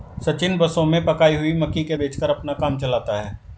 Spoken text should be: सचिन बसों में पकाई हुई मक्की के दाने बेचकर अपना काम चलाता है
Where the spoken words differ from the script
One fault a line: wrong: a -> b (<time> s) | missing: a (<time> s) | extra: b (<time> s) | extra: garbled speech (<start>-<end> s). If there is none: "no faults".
missing: दाने (2.0 s)